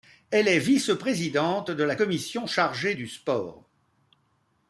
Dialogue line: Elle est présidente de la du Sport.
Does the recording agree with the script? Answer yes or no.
no